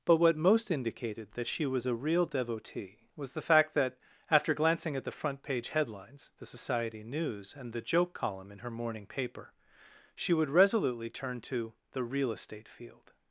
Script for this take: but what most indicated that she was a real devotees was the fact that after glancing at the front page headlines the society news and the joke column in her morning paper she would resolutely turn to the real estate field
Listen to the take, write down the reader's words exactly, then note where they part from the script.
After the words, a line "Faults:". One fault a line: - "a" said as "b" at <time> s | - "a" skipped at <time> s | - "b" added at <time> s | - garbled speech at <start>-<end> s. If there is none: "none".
but what most indicated that she was a real devotee was the fact that after glancing at the front page headlines the society news and the joke column in her morning paper she would resolutely turn to the real estate field
Faults:
- "devotees" said as "devotee" at 2.2 s